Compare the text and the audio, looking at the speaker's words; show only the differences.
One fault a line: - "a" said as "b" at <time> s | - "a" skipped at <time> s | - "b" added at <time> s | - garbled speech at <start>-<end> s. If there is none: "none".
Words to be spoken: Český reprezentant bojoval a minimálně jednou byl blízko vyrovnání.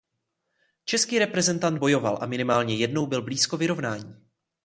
none